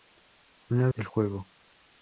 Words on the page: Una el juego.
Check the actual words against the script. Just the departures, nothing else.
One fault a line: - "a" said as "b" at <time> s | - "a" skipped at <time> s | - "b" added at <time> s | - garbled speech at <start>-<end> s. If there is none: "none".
none